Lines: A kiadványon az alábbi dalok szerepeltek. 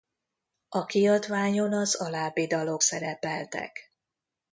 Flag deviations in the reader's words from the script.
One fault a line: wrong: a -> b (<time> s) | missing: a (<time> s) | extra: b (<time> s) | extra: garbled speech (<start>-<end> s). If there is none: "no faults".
no faults